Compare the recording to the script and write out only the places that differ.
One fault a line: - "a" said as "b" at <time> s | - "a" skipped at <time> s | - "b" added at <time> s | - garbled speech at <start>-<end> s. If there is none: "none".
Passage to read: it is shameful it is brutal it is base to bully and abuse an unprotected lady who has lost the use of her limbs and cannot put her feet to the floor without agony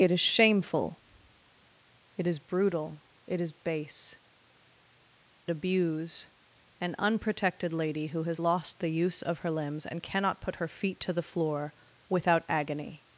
- "to bully and" skipped at 4.2 s